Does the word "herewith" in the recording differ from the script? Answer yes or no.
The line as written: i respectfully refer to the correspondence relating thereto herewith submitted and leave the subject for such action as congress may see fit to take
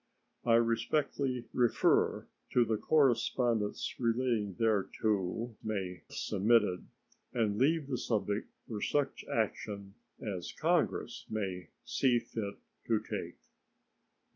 yes